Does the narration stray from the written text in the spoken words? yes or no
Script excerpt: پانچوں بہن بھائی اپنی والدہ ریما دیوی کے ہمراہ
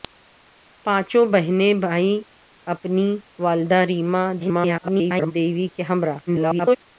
yes